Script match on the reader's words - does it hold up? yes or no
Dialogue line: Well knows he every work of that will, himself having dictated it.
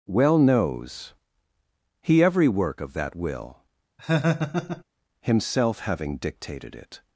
yes